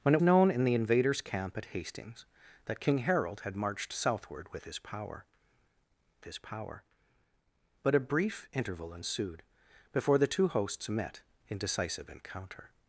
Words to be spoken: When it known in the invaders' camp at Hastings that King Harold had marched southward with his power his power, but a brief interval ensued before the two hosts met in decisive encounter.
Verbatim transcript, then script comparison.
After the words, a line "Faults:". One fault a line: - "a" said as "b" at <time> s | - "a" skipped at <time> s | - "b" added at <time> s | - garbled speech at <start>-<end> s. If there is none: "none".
When it known in the invaders' camp at Hastings that King Harold had marched southward with his power his power, but a brief interval ensued before the two hosts met in decisive encounter.
Faults:
none